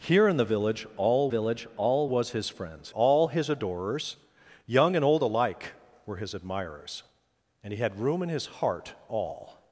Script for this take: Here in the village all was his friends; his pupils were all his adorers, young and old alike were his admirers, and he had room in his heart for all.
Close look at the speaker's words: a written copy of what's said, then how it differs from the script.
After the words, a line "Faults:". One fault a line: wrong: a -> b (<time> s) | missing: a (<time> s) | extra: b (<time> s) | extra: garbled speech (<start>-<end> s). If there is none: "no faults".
Here in the village all village all was his friends; all his adorers, young and old alike were his admirers, and he had room in his heart all.
Faults:
extra: village all (1.3 s)
missing: his pupils were (2.9 s)
missing: for (8.9 s)